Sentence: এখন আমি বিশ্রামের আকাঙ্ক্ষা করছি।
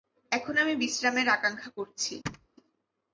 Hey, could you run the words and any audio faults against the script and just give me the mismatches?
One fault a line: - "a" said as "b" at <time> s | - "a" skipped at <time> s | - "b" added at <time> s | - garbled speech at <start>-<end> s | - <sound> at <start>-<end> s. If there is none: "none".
- thud at 2.3-2.5 s